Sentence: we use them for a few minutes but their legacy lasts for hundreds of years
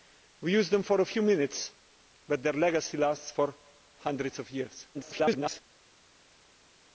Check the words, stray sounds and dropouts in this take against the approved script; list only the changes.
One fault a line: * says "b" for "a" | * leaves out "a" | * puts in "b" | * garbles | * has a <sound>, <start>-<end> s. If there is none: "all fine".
* garbles